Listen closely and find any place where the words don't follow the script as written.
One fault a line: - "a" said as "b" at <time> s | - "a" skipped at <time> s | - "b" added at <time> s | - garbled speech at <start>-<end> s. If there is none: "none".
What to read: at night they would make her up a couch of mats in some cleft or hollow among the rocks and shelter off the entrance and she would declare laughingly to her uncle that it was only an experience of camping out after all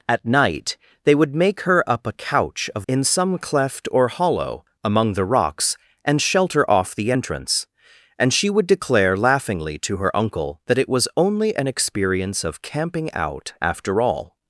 - "mats" skipped at 2.9 s